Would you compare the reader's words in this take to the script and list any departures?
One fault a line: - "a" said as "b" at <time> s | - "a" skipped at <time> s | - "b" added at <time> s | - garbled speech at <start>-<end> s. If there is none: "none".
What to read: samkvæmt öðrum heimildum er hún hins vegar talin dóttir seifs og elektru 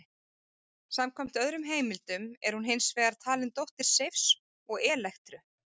none